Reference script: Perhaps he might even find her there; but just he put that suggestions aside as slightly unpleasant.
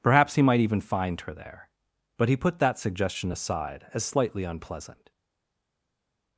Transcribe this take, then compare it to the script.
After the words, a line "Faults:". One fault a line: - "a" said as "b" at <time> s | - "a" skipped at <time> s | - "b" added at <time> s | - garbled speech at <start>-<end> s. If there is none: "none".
Perhaps he might even find her there; but he put that suggestion aside as slightly unpleasant.
Faults:
- "just" skipped at 2.3 s
- "suggestions" said as "suggestion" at 2.8 s